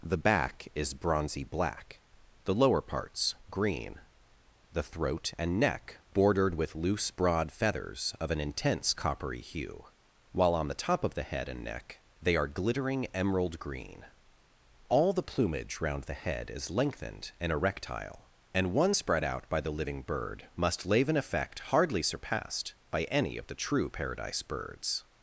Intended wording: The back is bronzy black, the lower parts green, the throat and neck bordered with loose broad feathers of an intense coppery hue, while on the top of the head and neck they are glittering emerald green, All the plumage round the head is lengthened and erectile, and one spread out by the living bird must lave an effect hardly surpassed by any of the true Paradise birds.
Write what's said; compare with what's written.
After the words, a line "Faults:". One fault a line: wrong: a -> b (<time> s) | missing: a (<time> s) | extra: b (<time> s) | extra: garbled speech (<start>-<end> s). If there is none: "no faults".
The back is bronzy black, the lower parts green, the throat and neck bordered with loose broad feathers of an intense coppery hue, while on the top of the head and neck they are glittering emerald green, All the plumage round the head is lengthened and erectile, and one spread out by the living bird must lave an effect hardly surpassed by any of the true Paradise birds.
Faults:
no faults